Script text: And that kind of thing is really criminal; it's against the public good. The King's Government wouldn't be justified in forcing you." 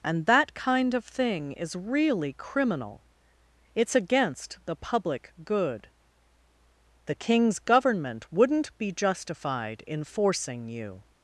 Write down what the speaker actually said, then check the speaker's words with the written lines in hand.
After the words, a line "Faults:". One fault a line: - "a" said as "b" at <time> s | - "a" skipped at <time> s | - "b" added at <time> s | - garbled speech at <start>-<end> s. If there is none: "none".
And that kind of thing is really criminal; it's against the public good. The King's Government wouldn't be justified in forcing you."
Faults:
none